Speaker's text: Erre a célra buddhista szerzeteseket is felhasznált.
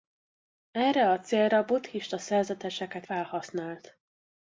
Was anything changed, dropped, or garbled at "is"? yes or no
yes